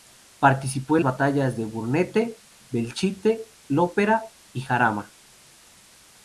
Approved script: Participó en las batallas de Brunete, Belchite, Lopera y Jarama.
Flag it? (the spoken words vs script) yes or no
yes